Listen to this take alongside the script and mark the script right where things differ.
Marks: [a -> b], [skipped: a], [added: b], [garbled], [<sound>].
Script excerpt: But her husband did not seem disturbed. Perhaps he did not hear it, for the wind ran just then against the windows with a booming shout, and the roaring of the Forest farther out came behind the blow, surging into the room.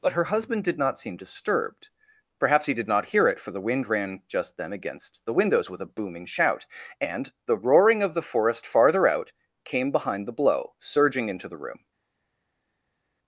But her husband did not seem disturbed. Perhaps he did not hear it, for the wind ran just then against the windows with a booming shout, and the roaring of the Forest farther out came behind the blow, surging into the room.